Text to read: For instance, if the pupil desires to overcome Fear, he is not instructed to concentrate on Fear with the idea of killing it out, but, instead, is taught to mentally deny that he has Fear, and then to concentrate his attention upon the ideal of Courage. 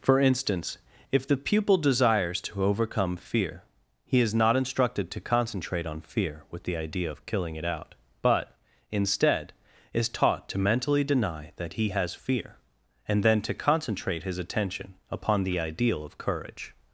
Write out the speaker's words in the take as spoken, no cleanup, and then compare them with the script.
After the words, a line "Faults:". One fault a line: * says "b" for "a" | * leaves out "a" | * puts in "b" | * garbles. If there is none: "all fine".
For instance, if the pupil desires to overcome Fear, he is not instructed to concentrate on Fear with the idea of killing it out, but, instead, is taught to mentally deny that he has Fear, and then to concentrate his attention upon the ideal of Courage.
Faults:
all fine